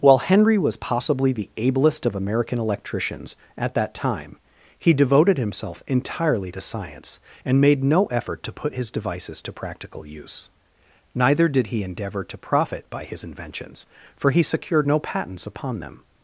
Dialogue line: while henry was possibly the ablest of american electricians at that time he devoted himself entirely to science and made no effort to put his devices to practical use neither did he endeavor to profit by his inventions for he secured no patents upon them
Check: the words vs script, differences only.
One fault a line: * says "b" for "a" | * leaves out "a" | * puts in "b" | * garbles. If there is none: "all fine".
all fine